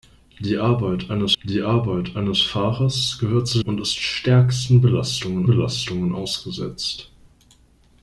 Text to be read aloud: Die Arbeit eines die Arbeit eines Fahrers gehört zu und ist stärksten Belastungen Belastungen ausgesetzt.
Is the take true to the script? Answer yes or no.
yes